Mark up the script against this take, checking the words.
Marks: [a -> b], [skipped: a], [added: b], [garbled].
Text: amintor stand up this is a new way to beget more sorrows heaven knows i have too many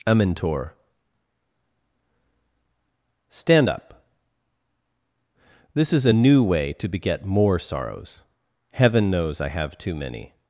amintor stand up this is a new way to beget more sorrows heaven knows i have too many